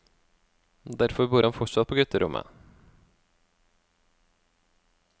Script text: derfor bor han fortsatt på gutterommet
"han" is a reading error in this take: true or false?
false